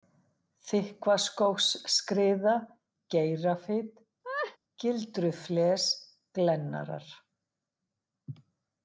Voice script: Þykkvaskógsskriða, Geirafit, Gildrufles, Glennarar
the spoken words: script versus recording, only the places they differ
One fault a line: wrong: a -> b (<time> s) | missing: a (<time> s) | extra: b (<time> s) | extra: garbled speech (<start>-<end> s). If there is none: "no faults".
no faults